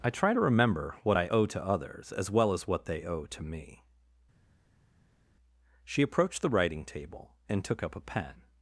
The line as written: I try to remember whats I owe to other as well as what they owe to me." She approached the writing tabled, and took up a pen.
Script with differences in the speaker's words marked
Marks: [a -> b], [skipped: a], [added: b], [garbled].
I try to remember [whats -> what] I owe to [other -> others] as well as what they owe to me." She approached the writing [tabled, -> table] and took up a pen.